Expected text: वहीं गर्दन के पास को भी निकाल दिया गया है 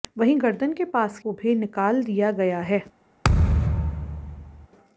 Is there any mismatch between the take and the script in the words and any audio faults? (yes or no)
yes